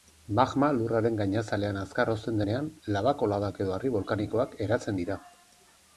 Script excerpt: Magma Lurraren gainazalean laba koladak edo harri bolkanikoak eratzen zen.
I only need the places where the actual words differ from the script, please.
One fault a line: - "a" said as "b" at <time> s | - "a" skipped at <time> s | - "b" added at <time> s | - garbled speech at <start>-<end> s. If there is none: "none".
- "azkar hozten denean" added at 1.8 s
- "zen" said as "dira" at 5.0 s